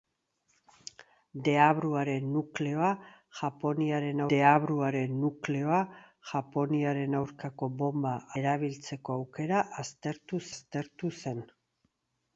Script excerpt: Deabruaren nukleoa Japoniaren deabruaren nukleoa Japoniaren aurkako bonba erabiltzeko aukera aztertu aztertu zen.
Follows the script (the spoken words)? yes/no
yes